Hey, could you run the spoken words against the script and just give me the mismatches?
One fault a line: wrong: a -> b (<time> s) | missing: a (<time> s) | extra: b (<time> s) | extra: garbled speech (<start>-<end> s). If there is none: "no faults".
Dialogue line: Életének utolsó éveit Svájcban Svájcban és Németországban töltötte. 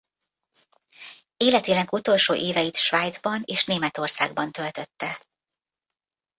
missing: Svájcban (3.4 s)